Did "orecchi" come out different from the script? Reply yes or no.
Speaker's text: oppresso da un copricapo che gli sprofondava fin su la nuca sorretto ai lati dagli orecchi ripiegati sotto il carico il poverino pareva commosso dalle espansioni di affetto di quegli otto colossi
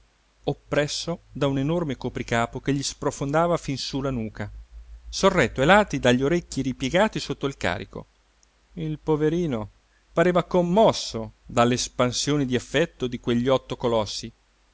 no